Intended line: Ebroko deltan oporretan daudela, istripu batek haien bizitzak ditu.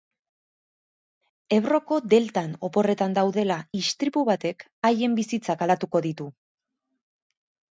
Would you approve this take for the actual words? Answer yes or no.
no